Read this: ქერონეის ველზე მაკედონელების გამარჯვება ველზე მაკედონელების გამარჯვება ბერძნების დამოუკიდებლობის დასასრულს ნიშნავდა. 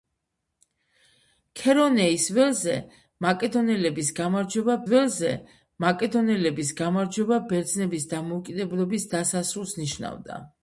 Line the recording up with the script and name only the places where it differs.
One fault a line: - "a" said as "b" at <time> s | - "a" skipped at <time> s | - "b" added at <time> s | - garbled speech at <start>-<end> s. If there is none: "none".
none